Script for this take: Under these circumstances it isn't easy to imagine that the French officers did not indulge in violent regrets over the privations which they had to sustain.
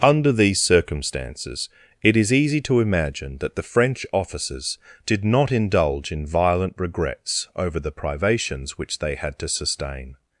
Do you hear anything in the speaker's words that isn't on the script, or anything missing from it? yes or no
yes